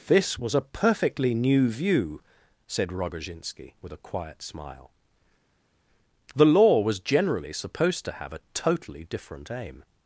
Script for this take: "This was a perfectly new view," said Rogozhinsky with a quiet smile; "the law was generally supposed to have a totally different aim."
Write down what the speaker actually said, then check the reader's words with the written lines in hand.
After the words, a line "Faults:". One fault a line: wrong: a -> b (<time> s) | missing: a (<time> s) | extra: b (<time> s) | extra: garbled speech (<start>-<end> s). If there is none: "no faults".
"This was a perfectly new view," said Rogozhinsky with a quiet smile; "the law was generally supposed to have a totally different aim."
Faults:
no faults